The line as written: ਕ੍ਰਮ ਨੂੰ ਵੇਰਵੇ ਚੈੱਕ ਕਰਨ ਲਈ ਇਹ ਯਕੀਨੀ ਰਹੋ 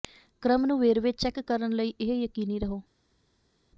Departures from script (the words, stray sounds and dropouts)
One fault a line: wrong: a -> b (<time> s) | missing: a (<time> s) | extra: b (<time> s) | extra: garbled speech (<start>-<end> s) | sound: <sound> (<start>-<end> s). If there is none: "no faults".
no faults